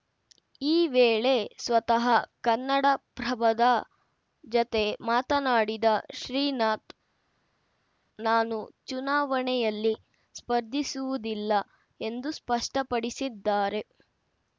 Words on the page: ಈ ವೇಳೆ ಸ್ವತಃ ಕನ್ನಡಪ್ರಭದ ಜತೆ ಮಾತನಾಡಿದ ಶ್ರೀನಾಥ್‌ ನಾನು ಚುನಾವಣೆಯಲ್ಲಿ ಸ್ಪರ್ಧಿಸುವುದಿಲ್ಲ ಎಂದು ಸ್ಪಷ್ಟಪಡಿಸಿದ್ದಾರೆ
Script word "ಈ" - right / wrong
right